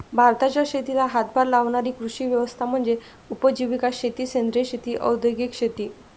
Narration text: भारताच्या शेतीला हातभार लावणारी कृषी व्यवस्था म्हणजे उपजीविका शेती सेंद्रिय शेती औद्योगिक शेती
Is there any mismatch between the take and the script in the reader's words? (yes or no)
no